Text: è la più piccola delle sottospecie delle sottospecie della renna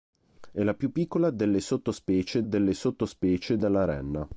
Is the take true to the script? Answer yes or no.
yes